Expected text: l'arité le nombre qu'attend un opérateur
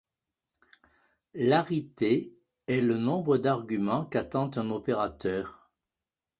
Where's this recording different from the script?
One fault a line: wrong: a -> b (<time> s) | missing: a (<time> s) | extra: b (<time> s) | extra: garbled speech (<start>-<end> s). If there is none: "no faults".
extra: est (2.6 s)
extra: d'arguments (3.4 s)